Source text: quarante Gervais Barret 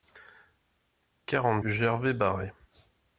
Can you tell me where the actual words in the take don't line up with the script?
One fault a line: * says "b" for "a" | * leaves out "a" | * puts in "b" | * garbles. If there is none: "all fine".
all fine